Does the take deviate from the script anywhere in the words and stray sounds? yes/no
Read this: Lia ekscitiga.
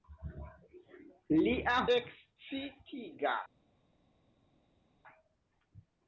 no